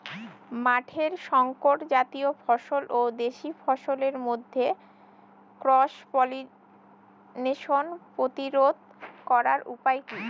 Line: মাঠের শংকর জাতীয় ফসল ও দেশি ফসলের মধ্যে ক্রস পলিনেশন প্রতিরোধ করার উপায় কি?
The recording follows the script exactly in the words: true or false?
true